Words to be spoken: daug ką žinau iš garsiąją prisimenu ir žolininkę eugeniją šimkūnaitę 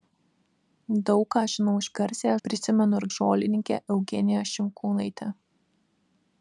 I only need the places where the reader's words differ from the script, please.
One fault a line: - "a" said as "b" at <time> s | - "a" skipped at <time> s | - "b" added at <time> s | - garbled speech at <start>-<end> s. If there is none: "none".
none